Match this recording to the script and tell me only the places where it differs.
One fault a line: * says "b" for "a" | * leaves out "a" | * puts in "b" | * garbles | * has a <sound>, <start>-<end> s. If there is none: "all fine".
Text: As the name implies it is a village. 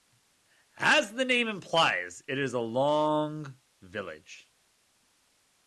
* puts in "long"